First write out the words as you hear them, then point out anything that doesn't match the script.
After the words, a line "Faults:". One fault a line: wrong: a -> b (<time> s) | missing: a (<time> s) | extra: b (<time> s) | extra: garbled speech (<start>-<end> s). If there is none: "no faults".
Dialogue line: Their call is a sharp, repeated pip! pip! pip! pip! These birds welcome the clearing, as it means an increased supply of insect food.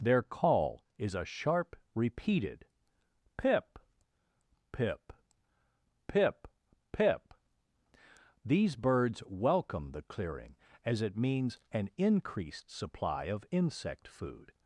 Their call is a sharp, repeated pip! pip! pip! pip! These birds welcome the clearing, as it means an increased supply of insect food.
Faults:
no faults